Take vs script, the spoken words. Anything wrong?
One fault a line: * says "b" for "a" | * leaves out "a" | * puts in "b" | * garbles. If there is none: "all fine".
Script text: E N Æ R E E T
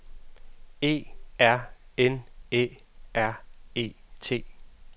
* puts in "R"
* leaves out "E"